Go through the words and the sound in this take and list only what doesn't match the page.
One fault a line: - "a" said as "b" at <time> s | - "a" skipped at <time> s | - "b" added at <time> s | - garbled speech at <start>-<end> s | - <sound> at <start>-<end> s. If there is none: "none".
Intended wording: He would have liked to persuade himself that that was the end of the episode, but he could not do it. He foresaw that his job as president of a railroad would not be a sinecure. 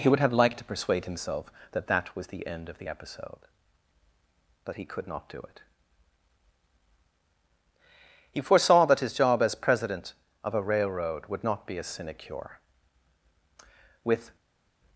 - "With" added at 14.0 s